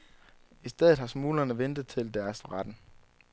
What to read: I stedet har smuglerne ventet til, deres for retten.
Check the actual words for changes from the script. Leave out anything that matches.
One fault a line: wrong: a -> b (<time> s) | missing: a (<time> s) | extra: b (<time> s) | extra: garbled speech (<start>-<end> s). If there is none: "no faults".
no faults